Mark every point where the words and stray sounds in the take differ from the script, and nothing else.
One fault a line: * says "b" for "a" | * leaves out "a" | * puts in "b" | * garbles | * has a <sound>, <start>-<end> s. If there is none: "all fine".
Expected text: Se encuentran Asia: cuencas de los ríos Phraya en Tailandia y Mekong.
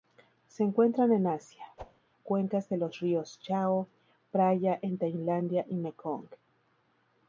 * puts in "en"
* has a whoosh, 1.8-2.0 s
* puts in "Chao"